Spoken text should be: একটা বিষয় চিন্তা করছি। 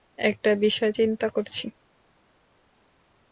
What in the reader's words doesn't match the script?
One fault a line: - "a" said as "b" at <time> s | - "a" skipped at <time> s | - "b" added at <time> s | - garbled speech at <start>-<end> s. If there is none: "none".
none